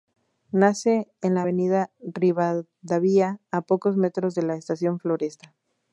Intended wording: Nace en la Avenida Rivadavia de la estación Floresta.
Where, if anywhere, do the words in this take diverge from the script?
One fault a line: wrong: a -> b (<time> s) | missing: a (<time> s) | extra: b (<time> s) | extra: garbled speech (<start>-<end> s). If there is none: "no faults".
extra: a pocos metros (3.5 s)